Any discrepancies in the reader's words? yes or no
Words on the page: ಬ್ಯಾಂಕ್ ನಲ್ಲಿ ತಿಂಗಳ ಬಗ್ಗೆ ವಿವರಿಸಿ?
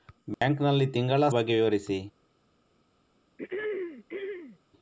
no